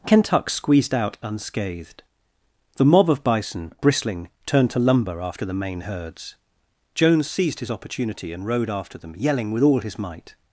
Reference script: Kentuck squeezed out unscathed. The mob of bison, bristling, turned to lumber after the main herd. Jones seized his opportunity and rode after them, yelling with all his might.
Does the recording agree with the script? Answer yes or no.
no